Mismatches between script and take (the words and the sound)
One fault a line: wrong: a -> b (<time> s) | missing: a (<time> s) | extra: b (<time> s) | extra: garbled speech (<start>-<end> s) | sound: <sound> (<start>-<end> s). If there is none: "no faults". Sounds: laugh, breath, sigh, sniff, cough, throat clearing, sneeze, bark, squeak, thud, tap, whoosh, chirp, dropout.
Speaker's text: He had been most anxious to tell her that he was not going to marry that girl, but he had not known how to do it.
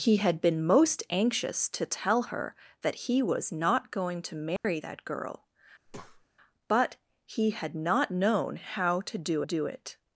sound: dropout (4.6-4.6 s)
sound: breath (5.9-6.3 s)
extra: do (9.4 s)